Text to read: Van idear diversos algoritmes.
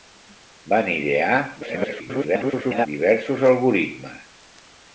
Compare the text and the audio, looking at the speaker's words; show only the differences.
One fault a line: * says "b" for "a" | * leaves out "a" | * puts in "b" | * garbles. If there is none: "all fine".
* garbles